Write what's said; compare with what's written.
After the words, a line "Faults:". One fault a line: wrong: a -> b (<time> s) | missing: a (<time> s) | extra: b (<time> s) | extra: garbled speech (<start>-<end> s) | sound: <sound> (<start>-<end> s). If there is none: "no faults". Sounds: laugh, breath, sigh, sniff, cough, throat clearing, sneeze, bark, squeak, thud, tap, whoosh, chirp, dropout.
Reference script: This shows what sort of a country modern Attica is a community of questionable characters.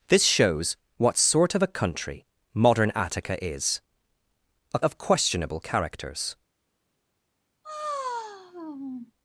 This shows what sort of a country modern Attica is a of questionable characters.
Faults:
missing: community (4.8 s)
sound: sigh (7.6-9.1 s)